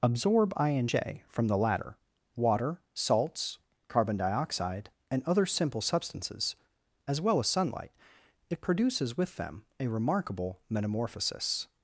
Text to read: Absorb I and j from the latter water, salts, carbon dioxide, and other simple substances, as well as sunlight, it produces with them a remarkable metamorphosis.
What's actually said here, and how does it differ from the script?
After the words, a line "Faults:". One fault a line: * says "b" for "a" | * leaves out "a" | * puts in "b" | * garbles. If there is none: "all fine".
Absorb I and j from the latter water, salts, carbon dioxide, and other simple substances, as well as sunlight, it produces with them a remarkable metamorphosis.
Faults:
all fine